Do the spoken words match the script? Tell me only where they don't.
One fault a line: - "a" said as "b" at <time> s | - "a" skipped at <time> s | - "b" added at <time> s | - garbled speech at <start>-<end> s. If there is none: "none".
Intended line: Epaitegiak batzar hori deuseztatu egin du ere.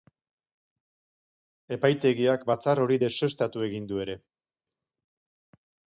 none